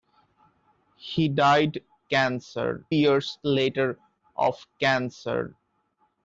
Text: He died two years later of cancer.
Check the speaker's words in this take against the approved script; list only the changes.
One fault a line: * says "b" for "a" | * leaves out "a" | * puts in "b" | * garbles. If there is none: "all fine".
* says "cancer" for "two"